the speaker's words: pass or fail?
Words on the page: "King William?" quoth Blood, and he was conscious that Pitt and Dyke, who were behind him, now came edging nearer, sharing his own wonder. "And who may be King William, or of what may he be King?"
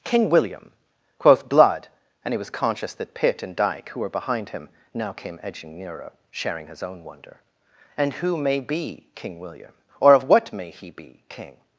pass